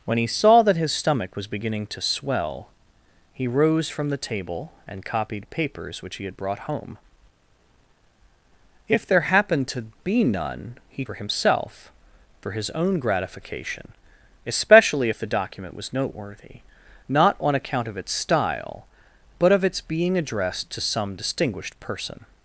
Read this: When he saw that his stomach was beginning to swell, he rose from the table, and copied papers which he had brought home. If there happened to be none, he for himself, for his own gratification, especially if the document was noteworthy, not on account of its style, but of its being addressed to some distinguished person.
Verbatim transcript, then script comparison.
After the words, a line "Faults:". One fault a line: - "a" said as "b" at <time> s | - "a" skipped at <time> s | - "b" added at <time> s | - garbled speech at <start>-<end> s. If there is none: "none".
When he saw that his stomach was beginning to swell, he rose from the table, and copied papers which he had brought home. If there happened to be none, he for himself, for his own gratification, especially if the document was noteworthy, not on account of its style, but of its being addressed to some distinguished person.
Faults:
none